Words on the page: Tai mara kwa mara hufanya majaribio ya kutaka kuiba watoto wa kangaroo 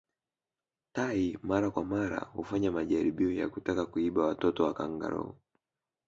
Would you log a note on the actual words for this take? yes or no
no